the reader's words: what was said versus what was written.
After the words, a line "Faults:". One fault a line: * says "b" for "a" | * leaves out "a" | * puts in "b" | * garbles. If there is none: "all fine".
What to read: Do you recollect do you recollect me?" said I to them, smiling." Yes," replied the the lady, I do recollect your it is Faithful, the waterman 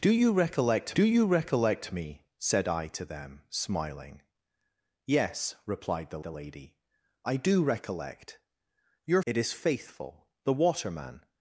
Do you recollect do you recollect me?" said I to them, smiling." Yes," replied the the lady, I do recollect your it is Faithful, the waterman
Faults:
all fine